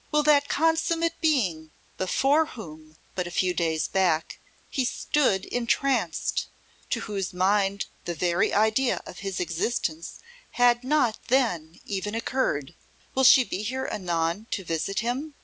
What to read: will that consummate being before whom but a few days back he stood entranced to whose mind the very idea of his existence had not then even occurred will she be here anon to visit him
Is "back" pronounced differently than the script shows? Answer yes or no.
no